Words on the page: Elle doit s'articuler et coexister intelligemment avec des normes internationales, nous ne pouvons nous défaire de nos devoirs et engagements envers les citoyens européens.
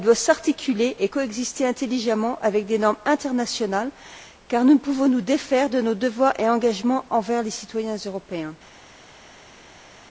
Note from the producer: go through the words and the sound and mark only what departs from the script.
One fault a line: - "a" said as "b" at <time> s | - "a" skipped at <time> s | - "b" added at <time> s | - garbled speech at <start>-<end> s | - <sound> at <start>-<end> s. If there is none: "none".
- "car" added at 4.5 s